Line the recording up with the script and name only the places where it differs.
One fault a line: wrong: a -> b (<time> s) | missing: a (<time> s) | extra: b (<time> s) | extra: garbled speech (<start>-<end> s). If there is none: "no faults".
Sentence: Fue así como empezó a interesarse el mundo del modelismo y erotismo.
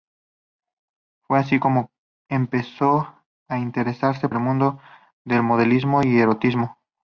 no faults